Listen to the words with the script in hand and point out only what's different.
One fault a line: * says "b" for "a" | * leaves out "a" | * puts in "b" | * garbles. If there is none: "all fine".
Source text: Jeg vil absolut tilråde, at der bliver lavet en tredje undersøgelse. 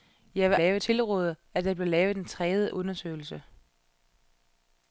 * says "lavet" for "absolut"